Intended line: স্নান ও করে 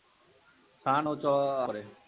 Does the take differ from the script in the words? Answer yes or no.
no